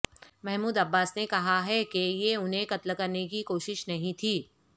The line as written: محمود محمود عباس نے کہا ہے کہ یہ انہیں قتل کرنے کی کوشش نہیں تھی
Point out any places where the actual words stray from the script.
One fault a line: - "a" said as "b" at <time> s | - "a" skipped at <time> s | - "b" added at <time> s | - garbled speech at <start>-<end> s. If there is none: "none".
- "محمود" skipped at 0.8 s